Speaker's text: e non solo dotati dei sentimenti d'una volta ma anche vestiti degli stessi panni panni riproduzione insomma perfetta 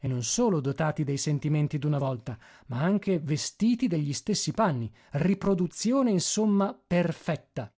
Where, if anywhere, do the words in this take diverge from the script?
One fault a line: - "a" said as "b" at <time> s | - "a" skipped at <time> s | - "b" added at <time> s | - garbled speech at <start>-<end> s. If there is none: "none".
- "panni" skipped at 4.9 s